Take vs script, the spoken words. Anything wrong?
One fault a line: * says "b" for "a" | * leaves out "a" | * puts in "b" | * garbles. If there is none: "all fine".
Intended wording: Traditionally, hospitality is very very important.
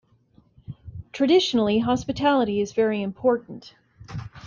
* leaves out "very"